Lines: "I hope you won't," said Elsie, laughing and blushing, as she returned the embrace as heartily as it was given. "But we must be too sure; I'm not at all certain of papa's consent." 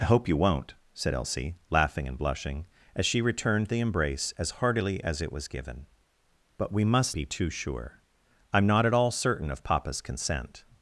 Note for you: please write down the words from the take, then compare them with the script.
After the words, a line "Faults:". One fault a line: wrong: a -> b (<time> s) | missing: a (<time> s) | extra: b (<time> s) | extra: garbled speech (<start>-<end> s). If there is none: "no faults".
"I hope you won't," said Elsie, laughing and blushing, as she returned the embrace as heartily as it was given. "But we must be too sure; I'm not at all certain of papa's consent."
Faults:
no faults